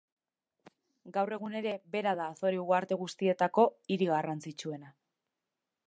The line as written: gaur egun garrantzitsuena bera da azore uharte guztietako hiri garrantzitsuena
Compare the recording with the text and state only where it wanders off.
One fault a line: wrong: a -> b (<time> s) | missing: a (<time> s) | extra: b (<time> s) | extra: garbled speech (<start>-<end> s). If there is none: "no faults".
wrong: garrantzitsuena -> ere (1.6 s)